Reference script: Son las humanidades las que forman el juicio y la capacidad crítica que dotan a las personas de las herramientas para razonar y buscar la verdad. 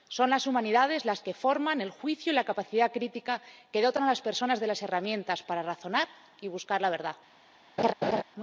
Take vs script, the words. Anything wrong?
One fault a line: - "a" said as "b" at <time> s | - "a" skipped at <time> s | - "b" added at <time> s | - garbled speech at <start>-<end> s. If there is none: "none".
none